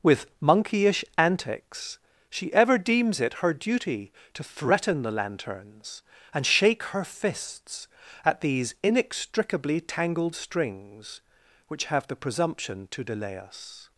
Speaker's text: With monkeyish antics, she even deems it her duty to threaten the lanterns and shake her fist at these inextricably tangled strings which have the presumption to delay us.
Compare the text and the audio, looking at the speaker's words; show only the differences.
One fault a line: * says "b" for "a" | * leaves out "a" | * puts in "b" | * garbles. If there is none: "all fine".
* says "ever" for "even"
* says "fists" for "fist"